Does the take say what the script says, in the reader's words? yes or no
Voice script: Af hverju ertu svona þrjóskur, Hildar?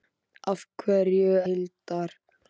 no